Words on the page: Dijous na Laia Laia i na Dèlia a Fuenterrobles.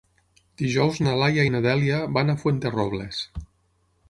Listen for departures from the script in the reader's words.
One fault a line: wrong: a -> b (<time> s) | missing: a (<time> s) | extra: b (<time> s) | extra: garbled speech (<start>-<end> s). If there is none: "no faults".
missing: Laia (1.4 s)
extra: van (2.2 s)